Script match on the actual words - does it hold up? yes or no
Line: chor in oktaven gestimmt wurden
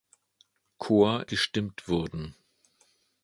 no